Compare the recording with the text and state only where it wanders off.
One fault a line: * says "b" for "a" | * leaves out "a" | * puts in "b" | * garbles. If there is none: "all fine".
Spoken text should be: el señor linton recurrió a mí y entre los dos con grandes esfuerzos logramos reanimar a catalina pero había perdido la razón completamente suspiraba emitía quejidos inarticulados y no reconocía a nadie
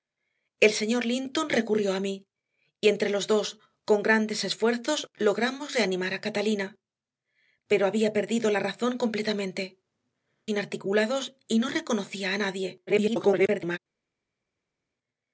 * leaves out "suspiraba emitía quejidos"
* garbles